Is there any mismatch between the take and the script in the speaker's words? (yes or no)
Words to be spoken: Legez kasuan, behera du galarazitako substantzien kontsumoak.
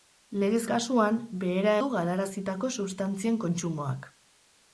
no